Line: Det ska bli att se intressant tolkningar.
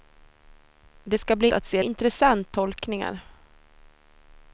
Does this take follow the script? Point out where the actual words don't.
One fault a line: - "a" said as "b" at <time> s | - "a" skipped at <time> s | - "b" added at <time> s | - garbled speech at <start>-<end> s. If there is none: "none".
none